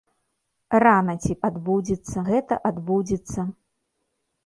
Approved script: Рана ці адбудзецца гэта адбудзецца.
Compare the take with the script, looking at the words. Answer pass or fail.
pass